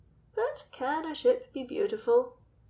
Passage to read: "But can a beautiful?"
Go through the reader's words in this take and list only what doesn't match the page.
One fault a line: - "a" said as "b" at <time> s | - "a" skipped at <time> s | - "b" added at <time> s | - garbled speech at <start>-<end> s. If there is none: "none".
- "ship be" added at 1.1 s